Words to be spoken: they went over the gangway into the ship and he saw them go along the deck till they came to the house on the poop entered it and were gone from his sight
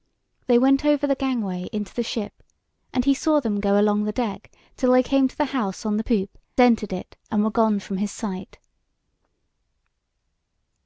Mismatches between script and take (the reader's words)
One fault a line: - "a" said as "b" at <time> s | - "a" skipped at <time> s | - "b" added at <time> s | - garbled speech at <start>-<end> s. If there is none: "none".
none